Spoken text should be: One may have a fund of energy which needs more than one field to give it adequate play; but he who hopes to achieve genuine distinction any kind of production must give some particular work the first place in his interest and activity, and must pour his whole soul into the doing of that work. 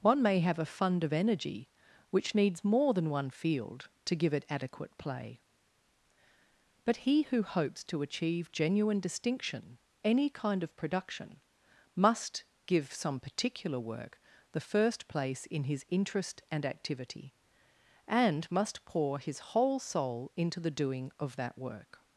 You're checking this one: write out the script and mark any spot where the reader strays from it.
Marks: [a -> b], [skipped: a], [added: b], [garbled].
One may have a fund of energy which needs more than one field to give it adequate play; but he who hopes to achieve genuine distinction any kind of production must give some particular work the first place in his interest and activity, and must pour his whole soul into the doing of that work.